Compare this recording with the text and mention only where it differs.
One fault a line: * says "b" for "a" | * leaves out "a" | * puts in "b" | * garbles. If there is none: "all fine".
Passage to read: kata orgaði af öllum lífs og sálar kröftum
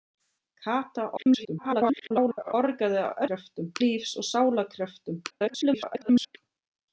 * garbles
* says "kröftum" for "öllum"
* garbles